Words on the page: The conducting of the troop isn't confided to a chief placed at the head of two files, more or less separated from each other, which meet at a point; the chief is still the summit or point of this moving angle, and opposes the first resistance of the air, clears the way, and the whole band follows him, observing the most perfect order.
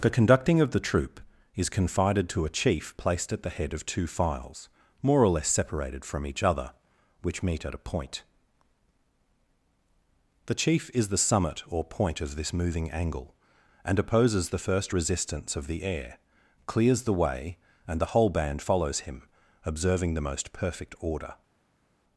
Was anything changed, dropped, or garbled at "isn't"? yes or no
yes